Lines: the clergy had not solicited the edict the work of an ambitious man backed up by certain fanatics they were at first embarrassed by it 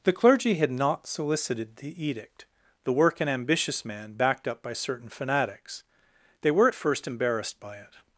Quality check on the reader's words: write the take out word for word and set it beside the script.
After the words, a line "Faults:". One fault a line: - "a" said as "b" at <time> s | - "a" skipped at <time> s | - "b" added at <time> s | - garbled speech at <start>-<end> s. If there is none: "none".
the clergy had not solicited the edict the work an ambitious man backed up by certain fanatics they were at first embarrassed by it
Faults:
- "of" skipped at 3.2 s